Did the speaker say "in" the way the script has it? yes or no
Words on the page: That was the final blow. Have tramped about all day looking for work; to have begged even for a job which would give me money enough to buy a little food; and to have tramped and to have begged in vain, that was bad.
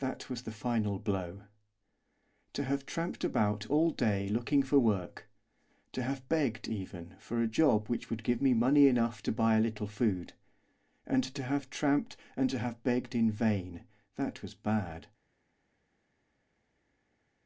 yes